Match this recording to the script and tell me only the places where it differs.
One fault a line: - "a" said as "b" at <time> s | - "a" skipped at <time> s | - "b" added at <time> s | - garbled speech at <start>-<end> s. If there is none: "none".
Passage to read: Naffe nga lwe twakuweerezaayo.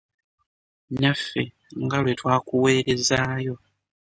none